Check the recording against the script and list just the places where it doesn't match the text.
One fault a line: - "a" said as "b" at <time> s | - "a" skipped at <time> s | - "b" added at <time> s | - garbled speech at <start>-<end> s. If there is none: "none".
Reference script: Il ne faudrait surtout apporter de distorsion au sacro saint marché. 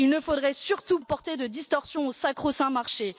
none